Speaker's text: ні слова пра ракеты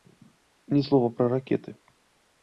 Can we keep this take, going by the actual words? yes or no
yes